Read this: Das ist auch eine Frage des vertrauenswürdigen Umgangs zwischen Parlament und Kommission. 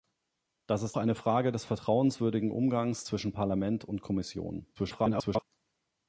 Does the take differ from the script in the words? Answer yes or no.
yes